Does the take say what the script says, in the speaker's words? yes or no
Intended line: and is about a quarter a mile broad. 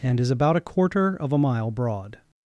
no